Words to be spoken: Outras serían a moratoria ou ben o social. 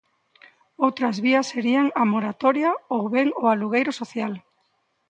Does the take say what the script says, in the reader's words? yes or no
no